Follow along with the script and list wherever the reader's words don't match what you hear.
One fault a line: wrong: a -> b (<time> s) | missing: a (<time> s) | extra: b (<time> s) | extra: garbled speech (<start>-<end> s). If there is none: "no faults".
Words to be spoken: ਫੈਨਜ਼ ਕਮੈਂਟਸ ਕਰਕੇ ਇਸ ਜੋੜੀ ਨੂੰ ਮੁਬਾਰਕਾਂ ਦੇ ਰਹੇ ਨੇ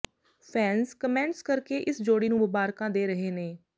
no faults